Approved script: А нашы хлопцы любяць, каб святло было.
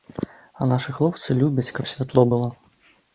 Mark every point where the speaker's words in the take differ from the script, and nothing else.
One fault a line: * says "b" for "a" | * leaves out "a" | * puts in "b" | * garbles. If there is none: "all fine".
all fine